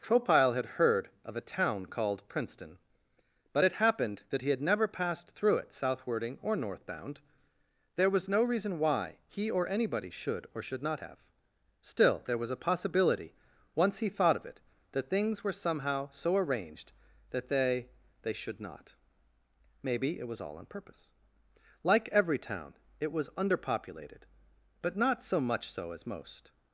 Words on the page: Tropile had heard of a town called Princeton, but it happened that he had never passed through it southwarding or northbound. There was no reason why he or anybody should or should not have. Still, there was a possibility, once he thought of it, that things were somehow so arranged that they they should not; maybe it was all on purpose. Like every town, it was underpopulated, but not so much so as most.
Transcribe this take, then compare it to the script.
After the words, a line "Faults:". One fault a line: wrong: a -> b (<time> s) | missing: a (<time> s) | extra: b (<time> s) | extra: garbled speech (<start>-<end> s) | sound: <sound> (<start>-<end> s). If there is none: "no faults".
Tropile had heard of a town called Princeton, but it happened that he had never passed through it southwarding or northbound. There was no reason why he or anybody should or should not have. Still, there was a possibility, once he thought of it, that things were somehow so arranged that they they should not; maybe it was all on purpose. Like every town, it was underpopulated, but not so much so as most.
Faults:
no faults